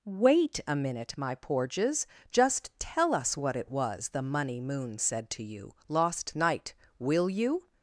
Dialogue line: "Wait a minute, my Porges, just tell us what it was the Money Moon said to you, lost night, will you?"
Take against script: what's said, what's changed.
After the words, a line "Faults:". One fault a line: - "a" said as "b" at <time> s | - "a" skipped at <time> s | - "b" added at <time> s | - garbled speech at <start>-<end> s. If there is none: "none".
"Wait a minute, my Porges, just tell us what it was the Money Moon said to you, lost night, will you?"
Faults:
none